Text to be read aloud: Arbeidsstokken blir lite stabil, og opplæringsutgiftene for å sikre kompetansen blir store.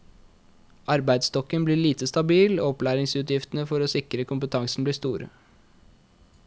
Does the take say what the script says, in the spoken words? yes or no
yes